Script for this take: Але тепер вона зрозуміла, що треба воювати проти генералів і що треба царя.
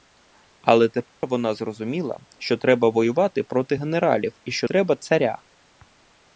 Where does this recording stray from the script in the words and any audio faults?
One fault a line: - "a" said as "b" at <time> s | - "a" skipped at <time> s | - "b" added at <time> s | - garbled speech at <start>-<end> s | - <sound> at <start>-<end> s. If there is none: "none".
- dropout at 1.1-1.2 s